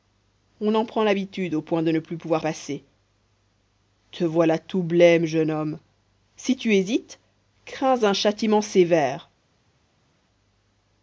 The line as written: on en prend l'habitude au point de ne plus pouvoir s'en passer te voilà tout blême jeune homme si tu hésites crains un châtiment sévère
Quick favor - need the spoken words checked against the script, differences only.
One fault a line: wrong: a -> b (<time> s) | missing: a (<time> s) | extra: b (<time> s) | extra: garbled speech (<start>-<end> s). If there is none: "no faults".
missing: s'en (2.4 s)